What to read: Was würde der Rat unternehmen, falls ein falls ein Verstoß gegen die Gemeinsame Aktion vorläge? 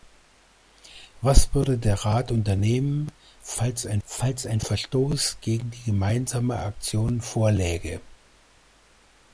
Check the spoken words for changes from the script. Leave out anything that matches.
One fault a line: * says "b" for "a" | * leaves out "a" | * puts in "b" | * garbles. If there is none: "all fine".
all fine